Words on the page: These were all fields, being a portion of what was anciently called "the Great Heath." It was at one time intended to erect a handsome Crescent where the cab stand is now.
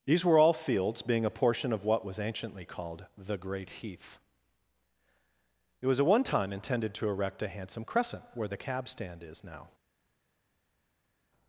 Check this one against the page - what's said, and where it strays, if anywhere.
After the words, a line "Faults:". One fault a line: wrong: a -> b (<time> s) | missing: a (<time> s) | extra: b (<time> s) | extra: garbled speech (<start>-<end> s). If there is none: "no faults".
These were all fields, being a portion of what was anciently called "the Great Heath." It was at one time intended to erect a handsome Crescent where the cab stand is now.
Faults:
no faults